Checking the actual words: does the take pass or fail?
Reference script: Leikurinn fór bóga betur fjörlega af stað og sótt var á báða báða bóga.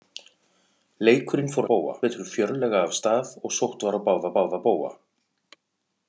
pass